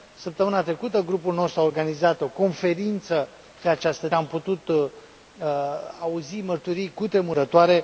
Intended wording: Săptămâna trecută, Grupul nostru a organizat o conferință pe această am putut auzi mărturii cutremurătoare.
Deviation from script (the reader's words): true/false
false